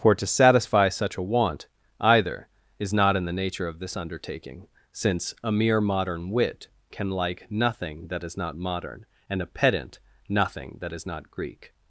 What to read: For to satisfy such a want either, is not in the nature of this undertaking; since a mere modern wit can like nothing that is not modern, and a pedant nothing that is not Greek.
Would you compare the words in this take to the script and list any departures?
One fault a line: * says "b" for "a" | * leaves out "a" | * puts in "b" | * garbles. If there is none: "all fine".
all fine